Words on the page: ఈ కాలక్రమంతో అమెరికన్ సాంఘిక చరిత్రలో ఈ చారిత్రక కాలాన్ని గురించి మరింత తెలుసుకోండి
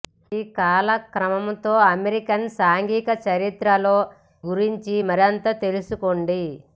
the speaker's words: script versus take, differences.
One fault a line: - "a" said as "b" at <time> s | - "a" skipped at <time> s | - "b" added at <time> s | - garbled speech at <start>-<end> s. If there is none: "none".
- "ఈ చారిత్రక కాలాన్ని" skipped at 4.0 s